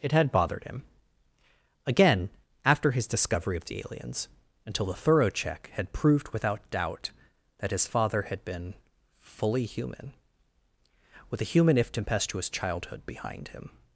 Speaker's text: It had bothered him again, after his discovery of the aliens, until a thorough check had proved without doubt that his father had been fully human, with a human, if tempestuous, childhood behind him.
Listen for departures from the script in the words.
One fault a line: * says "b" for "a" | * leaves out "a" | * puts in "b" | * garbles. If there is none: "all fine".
* says "the" for "a"